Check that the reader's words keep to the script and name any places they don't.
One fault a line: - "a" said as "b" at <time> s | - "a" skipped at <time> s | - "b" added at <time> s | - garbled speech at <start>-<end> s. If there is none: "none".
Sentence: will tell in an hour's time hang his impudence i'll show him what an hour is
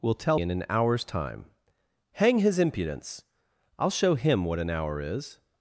none